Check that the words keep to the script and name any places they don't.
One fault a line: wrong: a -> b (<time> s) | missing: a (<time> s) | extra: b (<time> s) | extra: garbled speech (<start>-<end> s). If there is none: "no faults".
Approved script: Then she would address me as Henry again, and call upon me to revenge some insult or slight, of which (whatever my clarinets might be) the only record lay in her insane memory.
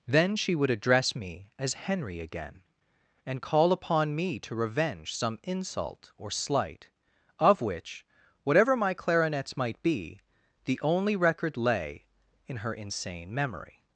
no faults